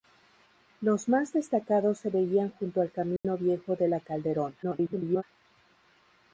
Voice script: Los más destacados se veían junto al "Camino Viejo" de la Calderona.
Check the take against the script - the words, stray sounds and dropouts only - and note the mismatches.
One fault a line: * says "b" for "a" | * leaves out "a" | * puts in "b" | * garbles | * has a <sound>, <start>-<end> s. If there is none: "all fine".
* has a dropout, 3.2-3.2 s
* garbles